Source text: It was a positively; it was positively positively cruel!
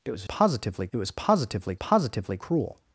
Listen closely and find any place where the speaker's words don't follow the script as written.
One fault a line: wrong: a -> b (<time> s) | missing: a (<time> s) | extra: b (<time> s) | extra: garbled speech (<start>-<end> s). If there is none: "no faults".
no faults